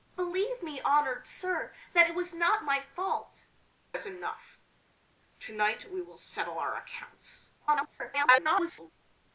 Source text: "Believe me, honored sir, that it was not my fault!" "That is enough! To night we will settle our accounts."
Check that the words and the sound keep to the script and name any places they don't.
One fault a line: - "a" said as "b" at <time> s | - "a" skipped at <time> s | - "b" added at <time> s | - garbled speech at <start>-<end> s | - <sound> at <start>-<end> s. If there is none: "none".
- "That" skipped at 3.5 s
- garbled speech at 7.6-8.9 s